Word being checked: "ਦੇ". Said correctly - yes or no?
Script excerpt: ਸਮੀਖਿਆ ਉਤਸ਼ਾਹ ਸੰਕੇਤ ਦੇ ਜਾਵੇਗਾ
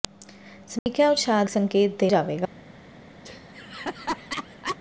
yes